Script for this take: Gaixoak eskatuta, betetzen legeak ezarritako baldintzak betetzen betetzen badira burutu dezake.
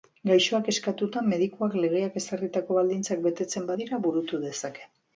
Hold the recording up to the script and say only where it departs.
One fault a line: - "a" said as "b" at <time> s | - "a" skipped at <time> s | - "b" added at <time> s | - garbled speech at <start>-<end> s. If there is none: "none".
- "betetzen" said as "medikuak" at 1.3 s
- "betetzen" skipped at 3.7 s